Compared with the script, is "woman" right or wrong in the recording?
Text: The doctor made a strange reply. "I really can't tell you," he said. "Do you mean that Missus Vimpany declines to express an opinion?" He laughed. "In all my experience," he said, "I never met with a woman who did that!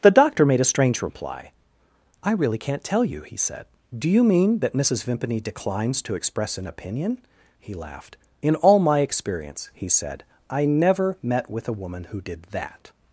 right